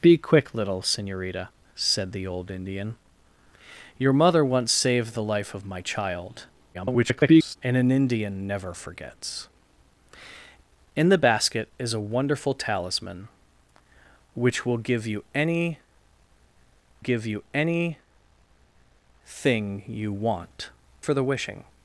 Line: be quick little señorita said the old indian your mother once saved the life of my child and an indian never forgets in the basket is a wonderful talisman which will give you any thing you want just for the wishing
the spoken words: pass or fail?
fail